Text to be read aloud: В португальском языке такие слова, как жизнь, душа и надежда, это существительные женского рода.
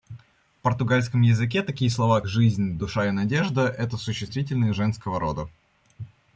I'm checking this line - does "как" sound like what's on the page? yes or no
no